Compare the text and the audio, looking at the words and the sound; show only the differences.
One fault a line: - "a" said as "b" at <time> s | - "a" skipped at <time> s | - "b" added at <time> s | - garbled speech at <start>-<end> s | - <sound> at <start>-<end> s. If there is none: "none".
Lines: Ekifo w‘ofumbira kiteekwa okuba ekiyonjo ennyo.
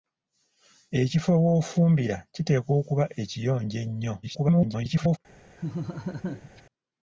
- garbled speech at 4.2-5.2 s
- laugh at 5.6-6.6 s